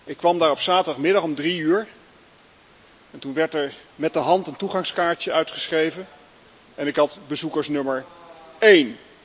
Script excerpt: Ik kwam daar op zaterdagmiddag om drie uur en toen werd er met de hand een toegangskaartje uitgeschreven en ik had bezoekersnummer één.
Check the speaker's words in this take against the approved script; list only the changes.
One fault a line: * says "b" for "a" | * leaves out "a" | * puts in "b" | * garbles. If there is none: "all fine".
all fine